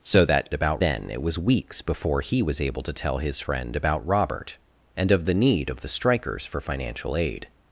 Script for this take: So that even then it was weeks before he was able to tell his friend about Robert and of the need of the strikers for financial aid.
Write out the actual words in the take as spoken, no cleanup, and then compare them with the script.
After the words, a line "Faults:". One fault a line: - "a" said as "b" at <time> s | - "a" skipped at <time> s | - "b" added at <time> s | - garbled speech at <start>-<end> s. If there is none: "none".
So that about then it was weeks before he was able to tell his friend about Robert and of the need of the strikers for financial aid.
Faults:
- "even" said as "about" at 0.5 s